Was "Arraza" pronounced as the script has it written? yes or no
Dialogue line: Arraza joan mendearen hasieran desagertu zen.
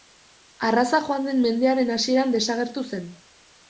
yes